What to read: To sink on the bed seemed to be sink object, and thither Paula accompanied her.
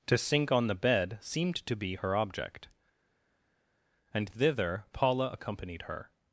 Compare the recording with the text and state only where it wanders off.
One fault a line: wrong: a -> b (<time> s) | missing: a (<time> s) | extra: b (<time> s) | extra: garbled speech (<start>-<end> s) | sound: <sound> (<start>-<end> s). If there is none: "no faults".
wrong: sink -> her (2.0 s)